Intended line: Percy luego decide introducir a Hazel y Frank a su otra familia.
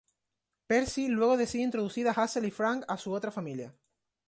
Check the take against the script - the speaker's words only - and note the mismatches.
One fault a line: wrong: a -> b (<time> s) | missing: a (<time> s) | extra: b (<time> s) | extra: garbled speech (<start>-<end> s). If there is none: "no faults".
no faults